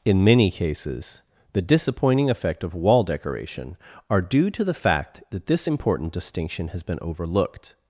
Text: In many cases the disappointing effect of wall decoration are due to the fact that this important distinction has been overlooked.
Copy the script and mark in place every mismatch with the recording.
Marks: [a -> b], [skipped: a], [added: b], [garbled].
In many cases the disappointing effect of wall decoration are due to the fact that this important distinction has been overlooked.